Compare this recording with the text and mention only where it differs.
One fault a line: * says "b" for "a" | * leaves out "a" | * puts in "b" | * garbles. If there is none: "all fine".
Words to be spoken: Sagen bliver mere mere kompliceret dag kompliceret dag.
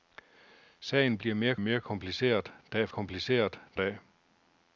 all fine